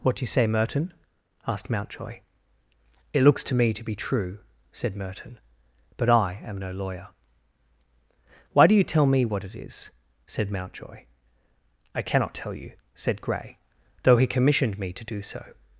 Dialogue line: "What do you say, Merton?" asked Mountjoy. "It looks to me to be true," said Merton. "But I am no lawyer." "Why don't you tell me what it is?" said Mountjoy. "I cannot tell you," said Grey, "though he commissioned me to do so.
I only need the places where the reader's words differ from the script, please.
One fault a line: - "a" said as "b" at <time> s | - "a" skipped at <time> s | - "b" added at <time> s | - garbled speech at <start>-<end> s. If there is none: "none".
- "don't" said as "do" at 8.7 s